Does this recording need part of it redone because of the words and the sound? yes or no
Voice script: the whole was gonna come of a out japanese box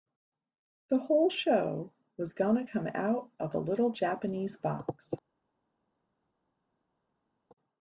yes